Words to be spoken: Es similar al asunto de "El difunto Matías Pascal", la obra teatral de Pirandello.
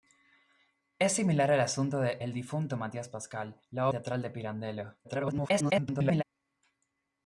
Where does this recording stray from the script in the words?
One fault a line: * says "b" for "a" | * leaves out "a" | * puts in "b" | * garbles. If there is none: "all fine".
* leaves out "obra"
* garbles